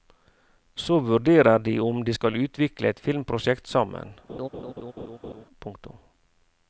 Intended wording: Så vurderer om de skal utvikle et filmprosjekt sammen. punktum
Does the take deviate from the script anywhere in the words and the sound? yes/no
yes